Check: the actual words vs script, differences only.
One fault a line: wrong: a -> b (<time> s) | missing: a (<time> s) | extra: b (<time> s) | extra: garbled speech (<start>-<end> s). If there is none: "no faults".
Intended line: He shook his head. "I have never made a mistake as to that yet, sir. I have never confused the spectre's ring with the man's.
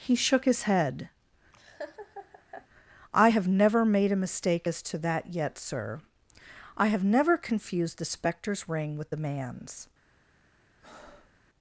no faults